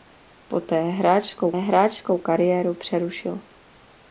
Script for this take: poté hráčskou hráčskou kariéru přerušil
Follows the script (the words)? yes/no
yes